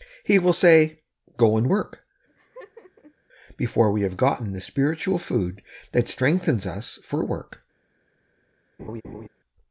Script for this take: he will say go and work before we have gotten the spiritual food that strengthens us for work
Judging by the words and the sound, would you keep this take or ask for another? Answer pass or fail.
fail